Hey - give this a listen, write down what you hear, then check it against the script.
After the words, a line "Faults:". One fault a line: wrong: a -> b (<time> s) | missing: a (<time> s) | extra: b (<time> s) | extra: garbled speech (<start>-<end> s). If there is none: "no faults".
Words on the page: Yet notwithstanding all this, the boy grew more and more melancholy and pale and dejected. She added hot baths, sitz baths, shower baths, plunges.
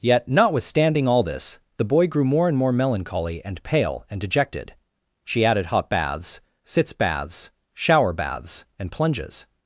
Yet notwithstanding all this, the boy grew more and more melancholy and pale and dejected. She added hot baths, sitz baths, shower baths, and plunges.
Faults:
extra: and (8.8 s)